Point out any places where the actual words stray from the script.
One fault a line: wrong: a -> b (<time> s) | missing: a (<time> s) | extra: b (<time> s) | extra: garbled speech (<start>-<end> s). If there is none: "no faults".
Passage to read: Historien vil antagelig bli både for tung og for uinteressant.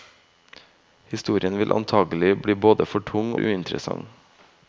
missing: og for (3.4 s)